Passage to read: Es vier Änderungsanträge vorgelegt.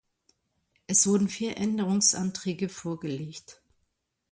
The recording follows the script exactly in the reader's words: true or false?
false